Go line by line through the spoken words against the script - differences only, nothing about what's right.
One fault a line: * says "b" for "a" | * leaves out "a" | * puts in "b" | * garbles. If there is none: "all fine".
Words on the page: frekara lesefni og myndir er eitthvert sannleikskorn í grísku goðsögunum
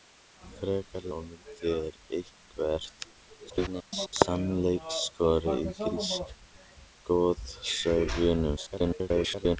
* leaves out "lesefni"
* garbles
* garbles